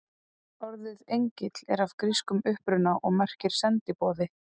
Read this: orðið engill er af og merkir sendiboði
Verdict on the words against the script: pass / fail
fail